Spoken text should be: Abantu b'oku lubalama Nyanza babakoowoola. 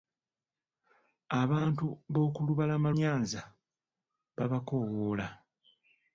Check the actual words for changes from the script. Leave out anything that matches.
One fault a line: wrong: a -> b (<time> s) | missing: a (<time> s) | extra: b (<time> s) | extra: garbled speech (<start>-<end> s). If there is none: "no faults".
no faults